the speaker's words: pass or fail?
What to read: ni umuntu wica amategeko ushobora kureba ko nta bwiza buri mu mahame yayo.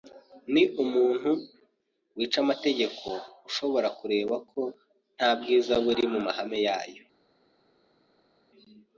pass